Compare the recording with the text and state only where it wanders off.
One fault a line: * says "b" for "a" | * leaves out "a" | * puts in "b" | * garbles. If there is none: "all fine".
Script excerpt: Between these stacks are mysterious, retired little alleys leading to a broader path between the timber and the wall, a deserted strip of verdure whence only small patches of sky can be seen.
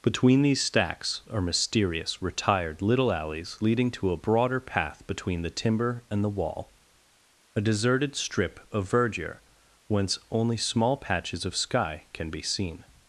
all fine